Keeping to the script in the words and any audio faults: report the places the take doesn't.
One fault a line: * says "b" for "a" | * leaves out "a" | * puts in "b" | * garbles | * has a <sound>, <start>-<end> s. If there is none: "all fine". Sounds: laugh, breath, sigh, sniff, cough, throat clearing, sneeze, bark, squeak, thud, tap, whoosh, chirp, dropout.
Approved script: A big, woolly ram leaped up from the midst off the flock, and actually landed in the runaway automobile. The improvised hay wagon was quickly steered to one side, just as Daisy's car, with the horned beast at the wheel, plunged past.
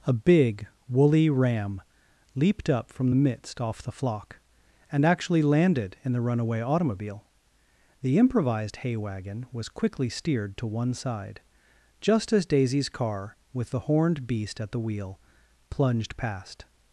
all fine